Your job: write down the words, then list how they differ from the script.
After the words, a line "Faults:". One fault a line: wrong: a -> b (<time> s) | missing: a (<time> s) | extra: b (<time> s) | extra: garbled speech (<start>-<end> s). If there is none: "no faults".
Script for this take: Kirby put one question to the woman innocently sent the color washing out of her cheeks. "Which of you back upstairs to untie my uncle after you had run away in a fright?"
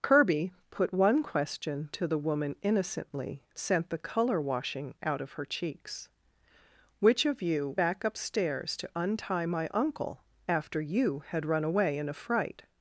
Kirby put one question to the woman innocently sent the color washing out of her cheeks. "Which of you back upstairs to untie my uncle after you had run away in a fright?"
Faults:
no faults